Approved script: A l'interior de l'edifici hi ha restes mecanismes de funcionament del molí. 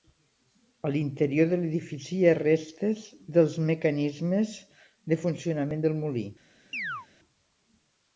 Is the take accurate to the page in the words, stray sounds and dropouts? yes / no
no